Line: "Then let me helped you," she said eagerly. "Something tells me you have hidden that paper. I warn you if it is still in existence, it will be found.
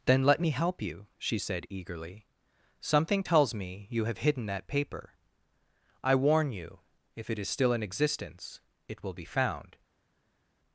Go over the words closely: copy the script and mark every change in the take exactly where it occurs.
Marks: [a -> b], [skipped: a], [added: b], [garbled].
"Then let me [helped -> help] you," she said eagerly. "Something tells me you have hidden that paper. I warn you if it is still in existence, it will be found.